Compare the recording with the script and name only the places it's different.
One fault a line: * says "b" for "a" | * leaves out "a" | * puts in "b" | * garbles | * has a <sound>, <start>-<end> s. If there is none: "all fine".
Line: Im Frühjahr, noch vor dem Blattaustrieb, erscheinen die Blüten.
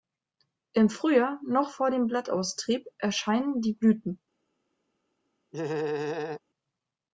* has a laugh, 5.5-6.4 s